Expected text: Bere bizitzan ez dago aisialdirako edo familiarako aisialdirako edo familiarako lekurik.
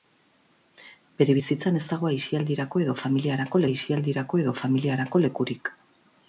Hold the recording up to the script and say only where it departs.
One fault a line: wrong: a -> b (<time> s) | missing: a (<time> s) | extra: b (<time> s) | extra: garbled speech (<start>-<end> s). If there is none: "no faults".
no faults